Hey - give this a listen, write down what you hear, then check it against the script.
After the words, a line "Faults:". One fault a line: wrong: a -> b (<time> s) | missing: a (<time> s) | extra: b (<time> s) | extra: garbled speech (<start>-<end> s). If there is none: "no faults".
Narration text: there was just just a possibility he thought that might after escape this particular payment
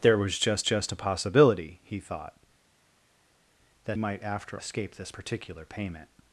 there was just just a possibility he thought that might after escape this particular payment
Faults:
no faults